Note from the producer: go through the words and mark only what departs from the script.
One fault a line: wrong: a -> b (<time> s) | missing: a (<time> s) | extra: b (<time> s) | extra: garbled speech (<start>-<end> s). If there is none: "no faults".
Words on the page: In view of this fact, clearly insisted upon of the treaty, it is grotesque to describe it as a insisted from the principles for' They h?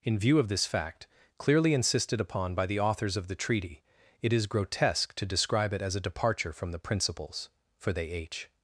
extra: by the authors (2.5 s)
wrong: insisted -> departure (6.0 s)